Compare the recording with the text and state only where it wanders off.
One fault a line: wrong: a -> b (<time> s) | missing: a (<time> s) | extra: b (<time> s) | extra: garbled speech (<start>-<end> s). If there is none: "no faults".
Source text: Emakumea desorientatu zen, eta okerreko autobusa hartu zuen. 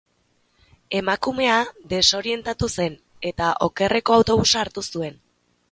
no faults